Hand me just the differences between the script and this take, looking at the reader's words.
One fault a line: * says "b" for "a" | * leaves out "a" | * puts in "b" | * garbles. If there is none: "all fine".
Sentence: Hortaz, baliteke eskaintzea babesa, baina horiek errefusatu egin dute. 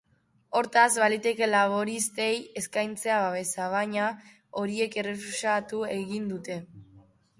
* puts in "laboristei"